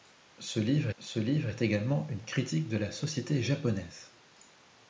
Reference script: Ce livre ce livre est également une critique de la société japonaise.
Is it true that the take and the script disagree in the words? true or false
false